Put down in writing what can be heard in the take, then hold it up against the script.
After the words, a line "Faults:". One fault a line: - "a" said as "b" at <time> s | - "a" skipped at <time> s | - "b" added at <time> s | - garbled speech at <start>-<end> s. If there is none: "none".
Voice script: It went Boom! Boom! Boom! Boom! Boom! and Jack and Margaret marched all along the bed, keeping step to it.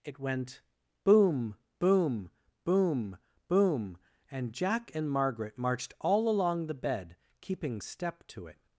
It went Boom! Boom! Boom! Boom! and Jack and Margaret marched all along the bed, keeping step to it.
Faults:
- "Boom" skipped at 4.0 s